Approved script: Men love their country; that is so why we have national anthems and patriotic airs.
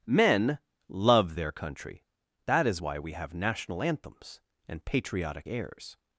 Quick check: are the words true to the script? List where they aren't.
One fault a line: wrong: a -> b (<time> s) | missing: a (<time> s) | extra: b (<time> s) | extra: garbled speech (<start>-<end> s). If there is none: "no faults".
missing: so (2.8 s)